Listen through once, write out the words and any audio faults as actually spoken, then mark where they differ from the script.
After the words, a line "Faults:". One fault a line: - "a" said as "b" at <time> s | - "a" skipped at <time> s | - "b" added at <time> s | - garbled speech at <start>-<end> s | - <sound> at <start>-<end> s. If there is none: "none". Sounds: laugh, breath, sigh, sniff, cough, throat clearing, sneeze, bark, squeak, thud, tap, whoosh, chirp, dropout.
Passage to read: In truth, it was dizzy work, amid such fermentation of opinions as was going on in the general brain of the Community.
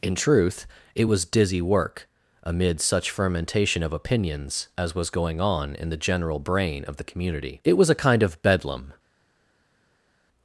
In truth, it was dizzy work, amid such fermentation of opinions as was going on in the general brain of the Community. It was a kind of Bedlam
Faults:
- "It was a kind of Bedlam" added at 7.6 s